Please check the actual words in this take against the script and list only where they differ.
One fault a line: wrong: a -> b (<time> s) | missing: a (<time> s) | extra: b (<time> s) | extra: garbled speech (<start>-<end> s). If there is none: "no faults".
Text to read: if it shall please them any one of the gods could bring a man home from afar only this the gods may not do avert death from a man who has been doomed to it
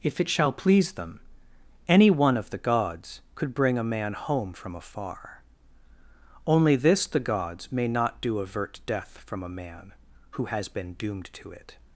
no faults